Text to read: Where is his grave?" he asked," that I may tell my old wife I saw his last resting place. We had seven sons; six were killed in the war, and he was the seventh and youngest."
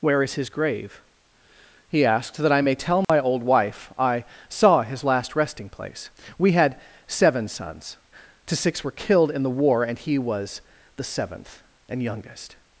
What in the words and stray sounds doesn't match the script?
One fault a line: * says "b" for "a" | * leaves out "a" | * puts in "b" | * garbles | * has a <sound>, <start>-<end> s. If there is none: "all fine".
* has a dropout, 3.0-3.1 s
* puts in "to"